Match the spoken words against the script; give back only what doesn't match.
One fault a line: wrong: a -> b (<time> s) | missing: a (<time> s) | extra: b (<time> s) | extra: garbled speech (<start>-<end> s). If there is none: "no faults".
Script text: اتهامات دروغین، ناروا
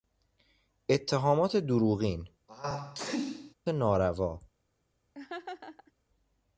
no faults